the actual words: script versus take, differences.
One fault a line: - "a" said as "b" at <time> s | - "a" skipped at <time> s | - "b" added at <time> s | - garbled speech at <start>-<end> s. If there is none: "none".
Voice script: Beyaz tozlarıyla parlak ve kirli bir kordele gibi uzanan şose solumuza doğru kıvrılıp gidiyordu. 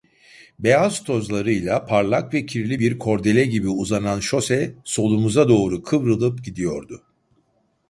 none